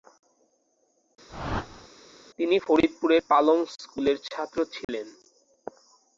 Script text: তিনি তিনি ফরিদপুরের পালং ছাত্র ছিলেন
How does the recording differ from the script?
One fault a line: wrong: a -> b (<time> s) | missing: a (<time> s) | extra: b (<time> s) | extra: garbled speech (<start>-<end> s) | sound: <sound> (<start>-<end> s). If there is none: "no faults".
sound: whoosh (1.3-1.9 s)
missing: তিনি (2.6 s)
extra: স্কুলের (3.7 s)
sound: dropout (4.8-4.9 s)